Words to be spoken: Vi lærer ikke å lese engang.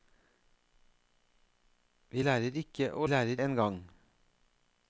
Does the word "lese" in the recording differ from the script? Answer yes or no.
yes